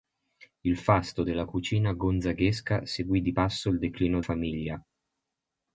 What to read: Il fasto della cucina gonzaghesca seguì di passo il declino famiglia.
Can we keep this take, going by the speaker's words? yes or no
yes